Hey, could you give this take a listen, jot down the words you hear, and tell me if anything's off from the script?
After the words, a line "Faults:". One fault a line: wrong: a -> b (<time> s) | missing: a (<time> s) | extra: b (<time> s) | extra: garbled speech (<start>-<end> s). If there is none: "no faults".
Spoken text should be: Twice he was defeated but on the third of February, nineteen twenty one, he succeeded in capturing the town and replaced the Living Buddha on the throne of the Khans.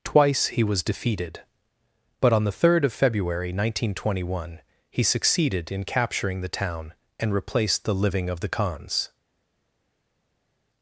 Twice he was defeated but on the third of February, nineteen twenty one, he succeeded in capturing the town and replaced the Living of the Khans.
Faults:
missing: Buddha on the throne (8.3 s)